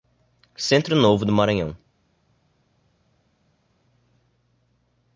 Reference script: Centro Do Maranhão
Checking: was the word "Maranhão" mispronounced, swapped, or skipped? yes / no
no